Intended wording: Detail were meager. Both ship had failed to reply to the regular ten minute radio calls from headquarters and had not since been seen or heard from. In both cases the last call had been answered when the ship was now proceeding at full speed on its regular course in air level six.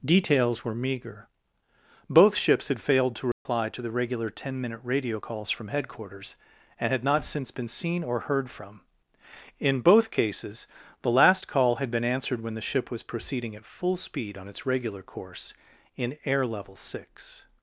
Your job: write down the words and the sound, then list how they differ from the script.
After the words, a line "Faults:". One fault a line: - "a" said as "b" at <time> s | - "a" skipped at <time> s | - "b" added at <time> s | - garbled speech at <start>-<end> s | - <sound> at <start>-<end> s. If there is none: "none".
Details were meager. Both ships had failed to reply to the regular ten minute radio calls from headquarters and had not since been seen or heard from. In both cases the last call had been answered when the ship was proceeding at full speed on its regular course in air level six.
Faults:
- "Detail" said as "Details" at 0.0 s
- "ship" said as "ships" at 2.4 s
- dropout at 3.3-3.5 s
- "now" skipped at 13.0 s